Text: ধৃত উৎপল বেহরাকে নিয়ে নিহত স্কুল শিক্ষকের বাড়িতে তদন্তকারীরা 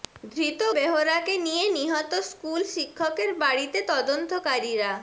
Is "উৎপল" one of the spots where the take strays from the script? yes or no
yes